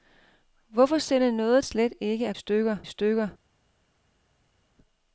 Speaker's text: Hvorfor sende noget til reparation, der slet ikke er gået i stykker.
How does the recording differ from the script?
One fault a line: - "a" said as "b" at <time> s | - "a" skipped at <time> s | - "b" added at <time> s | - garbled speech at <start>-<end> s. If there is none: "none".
- "til reparation der" skipped at 1.6 s
- "gået" said as "stykker" at 2.3 s